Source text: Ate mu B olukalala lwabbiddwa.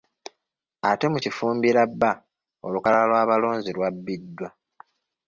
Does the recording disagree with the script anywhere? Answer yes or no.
yes